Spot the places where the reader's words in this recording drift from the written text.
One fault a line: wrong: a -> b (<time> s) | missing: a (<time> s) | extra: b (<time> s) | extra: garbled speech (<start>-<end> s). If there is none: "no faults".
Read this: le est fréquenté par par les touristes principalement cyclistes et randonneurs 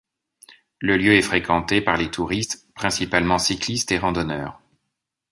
extra: lieu (1.0 s)
missing: par (1.9 s)